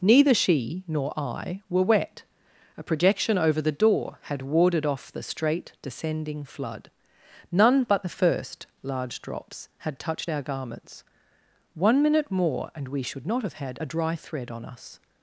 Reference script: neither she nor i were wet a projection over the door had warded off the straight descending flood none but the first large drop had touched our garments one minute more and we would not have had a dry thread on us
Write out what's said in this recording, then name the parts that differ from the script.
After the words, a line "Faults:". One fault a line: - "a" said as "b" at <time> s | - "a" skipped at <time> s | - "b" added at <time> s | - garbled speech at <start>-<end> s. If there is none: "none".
neither she nor i were wet a projection over the door had warded off the straight descending flood none but the first large drops had touched our garments one minute more and we should not have had a dry thread on us
Faults:
- "drop" said as "drops" at 9.2 s
- "would" said as "should" at 13.0 s